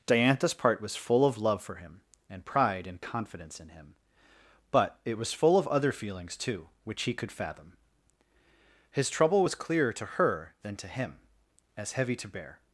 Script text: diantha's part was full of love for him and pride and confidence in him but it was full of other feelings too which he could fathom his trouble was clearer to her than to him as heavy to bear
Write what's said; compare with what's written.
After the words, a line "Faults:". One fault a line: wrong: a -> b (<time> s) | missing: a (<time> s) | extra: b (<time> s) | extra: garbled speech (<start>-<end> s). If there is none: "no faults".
diantha's part was full of love for him and pride and confidence in him but it was full of other feelings too which he could fathom his trouble was clearer to her than to him as heavy to bear
Faults:
no faults